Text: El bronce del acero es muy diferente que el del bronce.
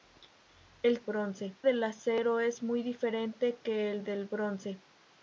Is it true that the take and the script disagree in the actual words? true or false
false